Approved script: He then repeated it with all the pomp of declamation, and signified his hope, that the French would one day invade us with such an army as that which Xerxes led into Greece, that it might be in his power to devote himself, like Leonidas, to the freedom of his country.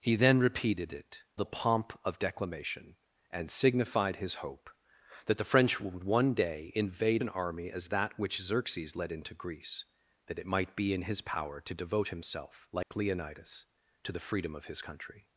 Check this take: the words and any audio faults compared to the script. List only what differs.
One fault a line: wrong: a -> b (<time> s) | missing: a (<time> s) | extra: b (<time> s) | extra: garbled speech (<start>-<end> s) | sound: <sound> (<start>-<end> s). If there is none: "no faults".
missing: with all (1.2 s)
missing: us with such (7.2 s)
sound: dropout (12.8-12.9 s)